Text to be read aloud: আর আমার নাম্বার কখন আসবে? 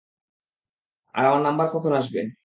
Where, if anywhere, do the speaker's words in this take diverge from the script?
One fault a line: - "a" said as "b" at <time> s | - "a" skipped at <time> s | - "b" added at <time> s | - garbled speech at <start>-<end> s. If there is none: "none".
none